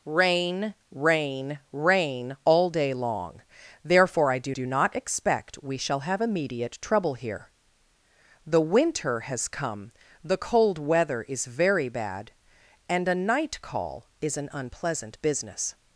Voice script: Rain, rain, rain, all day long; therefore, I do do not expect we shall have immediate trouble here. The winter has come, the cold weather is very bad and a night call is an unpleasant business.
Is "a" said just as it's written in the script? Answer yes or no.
yes